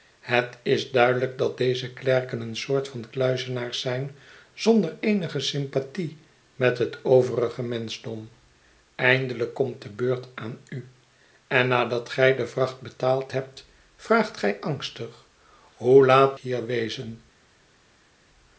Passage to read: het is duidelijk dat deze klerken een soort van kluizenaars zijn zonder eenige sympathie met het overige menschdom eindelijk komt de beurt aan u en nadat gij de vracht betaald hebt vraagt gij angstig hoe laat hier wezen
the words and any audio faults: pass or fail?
pass